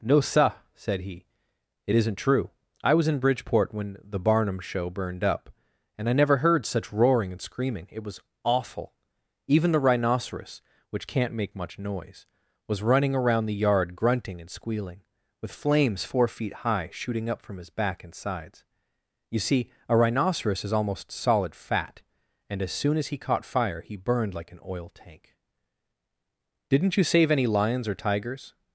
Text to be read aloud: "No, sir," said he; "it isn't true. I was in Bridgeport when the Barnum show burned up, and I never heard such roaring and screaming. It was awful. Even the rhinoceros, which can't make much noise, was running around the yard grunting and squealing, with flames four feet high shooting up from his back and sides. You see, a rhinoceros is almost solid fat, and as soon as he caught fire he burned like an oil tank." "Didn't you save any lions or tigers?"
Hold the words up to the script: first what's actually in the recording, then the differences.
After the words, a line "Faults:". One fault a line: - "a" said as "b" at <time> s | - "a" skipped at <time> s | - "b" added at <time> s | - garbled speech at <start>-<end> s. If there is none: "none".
"No, sir," said he; "it isn't true. I was in Bridgeport when the Barnum show burned up, and I never heard such roaring and screaming. It was awful. Even the rhinoceros, which can't make much noise, was running around the yard grunting and squealing, with flames four feet high shooting up from his back and sides. You see, a rhinoceros is almost solid fat, and as soon as he caught fire he burned like an oil tank." "Didn't you save any lions or tigers?"
Faults:
none